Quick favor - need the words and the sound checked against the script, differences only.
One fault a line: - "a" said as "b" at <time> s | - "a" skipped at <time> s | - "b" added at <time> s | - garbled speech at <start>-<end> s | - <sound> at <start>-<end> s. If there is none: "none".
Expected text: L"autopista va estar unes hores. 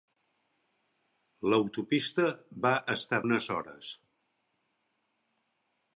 none